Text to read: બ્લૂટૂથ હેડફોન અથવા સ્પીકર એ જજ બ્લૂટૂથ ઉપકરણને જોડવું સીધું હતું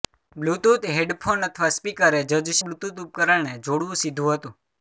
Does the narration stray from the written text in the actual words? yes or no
no